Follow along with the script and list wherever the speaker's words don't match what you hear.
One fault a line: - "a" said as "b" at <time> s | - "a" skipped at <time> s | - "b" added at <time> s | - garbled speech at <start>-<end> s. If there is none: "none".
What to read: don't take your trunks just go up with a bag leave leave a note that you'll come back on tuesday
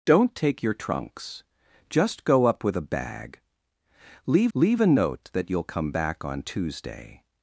none